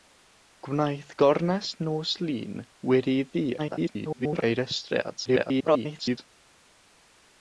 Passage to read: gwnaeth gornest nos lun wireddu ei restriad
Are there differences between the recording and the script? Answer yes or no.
yes